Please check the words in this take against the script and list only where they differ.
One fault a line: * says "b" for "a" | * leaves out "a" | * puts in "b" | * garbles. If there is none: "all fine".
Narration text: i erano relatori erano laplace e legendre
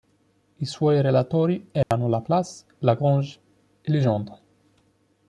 * says "suoi" for "erano"
* puts in "lagrange"